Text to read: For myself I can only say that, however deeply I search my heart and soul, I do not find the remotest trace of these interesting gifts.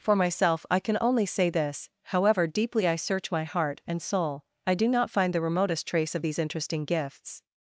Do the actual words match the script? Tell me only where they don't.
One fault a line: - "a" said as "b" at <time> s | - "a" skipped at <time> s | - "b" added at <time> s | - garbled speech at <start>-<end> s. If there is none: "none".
- "that" said as "this" at 1.5 s